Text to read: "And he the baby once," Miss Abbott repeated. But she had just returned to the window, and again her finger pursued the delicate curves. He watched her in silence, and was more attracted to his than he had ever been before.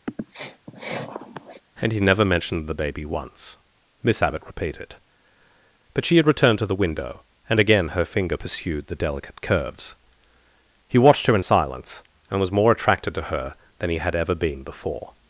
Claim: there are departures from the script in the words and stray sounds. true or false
true